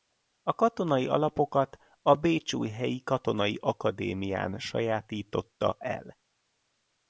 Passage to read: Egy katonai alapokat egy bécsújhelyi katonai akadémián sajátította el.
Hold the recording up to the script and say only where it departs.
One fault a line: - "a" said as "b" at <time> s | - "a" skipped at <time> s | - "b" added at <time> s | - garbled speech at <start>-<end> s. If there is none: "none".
- "Egy" said as "A" at 0.4 s
- "egy" said as "a" at 2.0 s